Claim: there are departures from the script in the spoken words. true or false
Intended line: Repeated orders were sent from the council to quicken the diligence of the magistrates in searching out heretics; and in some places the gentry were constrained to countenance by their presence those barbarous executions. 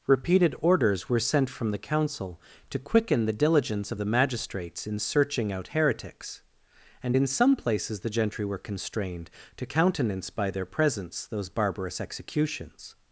false